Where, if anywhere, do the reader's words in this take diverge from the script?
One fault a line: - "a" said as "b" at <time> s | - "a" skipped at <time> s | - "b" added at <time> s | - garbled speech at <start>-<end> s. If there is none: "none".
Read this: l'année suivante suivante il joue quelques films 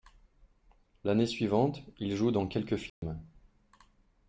- "suivante" skipped at 1.8 s
- "dans" added at 2.3 s